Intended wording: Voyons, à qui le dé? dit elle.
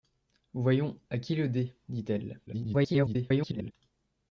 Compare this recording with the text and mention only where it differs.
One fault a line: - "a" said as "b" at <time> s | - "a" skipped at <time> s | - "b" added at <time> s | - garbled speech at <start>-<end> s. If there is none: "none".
- garbled speech at 2.5-3.7 s